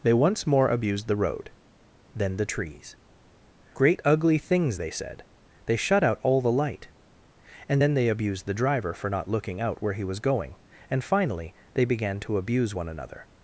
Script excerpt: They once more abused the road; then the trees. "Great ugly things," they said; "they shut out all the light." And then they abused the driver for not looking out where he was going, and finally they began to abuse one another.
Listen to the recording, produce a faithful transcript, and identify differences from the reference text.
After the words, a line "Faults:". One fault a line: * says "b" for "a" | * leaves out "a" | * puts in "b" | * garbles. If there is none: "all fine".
They once more abused the road; then the trees. "Great ugly things," they said; "they shut out all the light." And then they abused the driver for not looking out where he was going, and finally they began to abuse one another.
Faults:
all fine